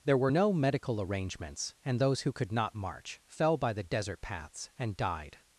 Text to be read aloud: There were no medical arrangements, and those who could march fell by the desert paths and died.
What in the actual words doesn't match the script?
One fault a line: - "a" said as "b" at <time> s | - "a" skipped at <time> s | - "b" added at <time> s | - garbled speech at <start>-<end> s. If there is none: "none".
- "not" added at 2.5 s